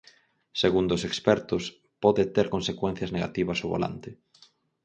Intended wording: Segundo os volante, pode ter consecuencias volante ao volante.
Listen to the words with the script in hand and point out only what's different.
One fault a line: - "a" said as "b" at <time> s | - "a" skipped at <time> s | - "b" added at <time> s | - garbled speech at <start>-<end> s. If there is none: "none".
- "volante" said as "expertos" at 1.1 s
- "volante" said as "negativas" at 3.1 s